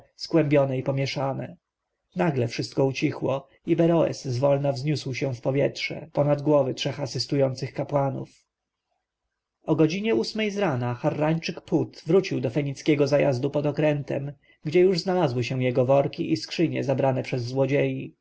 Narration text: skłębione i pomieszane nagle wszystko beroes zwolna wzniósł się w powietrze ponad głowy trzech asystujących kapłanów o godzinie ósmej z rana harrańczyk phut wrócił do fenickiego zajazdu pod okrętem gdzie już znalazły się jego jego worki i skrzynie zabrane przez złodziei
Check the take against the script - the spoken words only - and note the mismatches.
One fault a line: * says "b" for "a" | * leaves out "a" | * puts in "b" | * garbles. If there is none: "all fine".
* puts in "ucichło i"
* leaves out "jego"